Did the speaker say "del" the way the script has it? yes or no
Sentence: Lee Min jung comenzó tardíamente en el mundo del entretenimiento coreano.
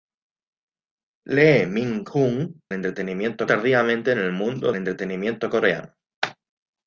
no